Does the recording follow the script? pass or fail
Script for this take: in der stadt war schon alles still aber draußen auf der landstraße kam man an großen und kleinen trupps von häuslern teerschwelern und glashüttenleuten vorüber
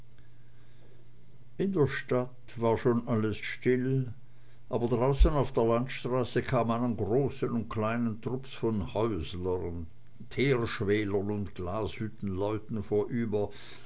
pass